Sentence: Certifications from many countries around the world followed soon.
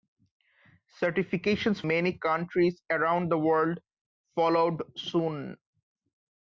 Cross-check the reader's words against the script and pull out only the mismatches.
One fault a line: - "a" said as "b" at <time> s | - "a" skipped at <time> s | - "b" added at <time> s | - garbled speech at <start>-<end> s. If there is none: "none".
- "from" skipped at 1.8 s